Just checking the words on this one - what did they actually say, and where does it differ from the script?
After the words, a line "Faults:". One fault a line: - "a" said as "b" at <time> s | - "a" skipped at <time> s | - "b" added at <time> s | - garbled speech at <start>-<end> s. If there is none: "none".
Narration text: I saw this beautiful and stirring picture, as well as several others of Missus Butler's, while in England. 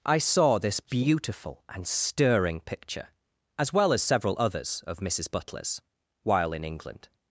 I saw this beautiful and stirring picture, as well as several others of Missus Butler's, while in England.
Faults:
none